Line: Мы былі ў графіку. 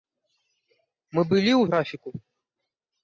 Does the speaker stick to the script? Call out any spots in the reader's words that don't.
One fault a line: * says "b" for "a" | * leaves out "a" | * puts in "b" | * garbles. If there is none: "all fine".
all fine